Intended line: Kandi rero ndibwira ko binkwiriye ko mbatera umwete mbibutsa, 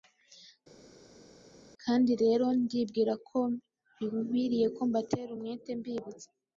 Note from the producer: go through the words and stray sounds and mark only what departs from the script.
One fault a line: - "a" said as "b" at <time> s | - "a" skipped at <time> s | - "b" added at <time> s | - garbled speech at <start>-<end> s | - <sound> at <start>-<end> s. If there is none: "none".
none